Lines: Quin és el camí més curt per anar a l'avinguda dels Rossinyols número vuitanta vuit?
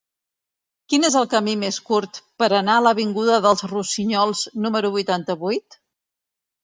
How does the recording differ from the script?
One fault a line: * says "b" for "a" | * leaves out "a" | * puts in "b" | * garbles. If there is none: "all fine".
all fine